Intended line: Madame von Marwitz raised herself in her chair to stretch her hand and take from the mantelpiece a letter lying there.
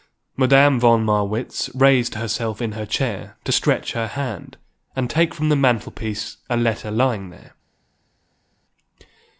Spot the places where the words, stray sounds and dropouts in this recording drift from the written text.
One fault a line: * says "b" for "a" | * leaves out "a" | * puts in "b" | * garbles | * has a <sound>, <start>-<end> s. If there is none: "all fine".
all fine